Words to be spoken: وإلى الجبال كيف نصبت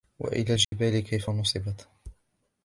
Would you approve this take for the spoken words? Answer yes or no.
yes